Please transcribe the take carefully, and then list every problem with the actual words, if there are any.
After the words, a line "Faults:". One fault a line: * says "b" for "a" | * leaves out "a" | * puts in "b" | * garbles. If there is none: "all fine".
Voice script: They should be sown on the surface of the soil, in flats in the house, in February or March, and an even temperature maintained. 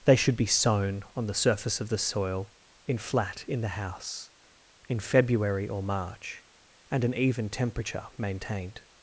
They should be sown on the surface of the soil, in flat in the house, in February or March, and an even temperature maintained.
Faults:
* says "flat" for "flats"